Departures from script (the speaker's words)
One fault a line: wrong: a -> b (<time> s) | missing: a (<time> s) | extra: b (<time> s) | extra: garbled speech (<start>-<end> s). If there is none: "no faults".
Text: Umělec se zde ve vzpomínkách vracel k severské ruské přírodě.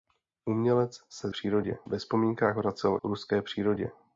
wrong: zde -> přírodě (1.3 s)
missing: k severské (3.0 s)